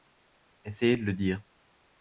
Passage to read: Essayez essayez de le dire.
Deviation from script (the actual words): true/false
true